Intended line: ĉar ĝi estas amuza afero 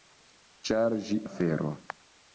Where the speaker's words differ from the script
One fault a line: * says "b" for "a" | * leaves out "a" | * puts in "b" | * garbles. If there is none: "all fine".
* leaves out "estas amuza"